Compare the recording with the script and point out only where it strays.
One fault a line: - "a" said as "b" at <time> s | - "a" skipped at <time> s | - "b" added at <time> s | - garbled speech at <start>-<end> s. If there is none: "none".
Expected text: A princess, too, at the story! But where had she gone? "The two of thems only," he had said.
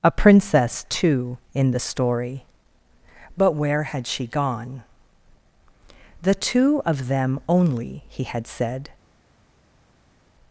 - "at" said as "in" at 1.5 s
- "thems" said as "them" at 7.1 s